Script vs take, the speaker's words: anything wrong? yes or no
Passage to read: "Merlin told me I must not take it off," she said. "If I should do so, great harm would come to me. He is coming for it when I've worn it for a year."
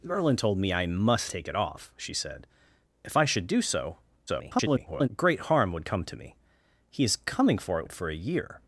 yes